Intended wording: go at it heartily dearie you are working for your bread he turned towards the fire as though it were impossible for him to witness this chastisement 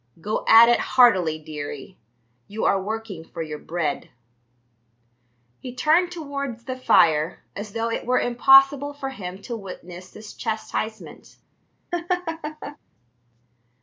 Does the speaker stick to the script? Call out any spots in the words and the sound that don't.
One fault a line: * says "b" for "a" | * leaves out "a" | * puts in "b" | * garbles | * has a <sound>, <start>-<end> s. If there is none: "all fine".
* has a laugh, 11.9-12.8 s